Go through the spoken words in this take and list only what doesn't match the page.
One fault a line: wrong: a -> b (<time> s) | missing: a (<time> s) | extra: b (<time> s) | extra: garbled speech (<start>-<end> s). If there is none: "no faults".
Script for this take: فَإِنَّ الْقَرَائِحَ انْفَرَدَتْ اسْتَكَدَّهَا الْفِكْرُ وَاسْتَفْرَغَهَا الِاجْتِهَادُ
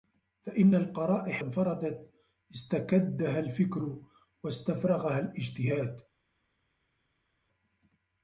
no faults